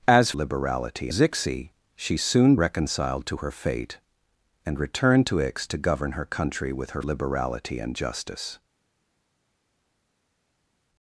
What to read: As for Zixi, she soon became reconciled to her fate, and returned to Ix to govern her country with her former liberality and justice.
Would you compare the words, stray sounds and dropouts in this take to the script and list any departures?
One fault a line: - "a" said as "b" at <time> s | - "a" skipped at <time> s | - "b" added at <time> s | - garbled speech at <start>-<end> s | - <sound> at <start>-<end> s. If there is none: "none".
- "for" said as "liberality" at 0.3 s
- "became" skipped at 2.6 s
- "former" skipped at 7.0 s